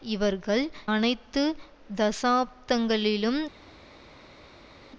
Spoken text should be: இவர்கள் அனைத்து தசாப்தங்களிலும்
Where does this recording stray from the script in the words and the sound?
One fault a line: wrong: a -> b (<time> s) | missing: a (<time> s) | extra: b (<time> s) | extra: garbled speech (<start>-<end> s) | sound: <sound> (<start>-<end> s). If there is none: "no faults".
no faults